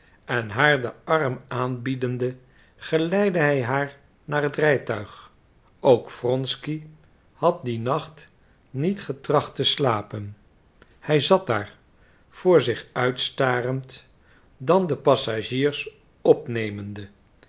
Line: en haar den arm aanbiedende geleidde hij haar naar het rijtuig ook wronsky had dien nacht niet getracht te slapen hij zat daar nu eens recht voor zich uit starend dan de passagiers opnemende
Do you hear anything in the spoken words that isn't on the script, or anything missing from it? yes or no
yes